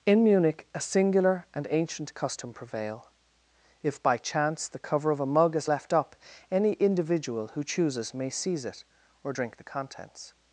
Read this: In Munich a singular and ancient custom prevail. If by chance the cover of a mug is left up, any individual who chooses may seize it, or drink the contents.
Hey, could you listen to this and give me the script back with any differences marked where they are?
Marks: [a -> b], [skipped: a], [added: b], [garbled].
In Munich a singular and ancient custom prevail. If by chance the cover of a mug is left up, any individual who chooses may seize it, or drink the contents.